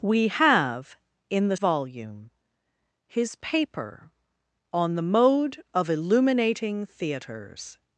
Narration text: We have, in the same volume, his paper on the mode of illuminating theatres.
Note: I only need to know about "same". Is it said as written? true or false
false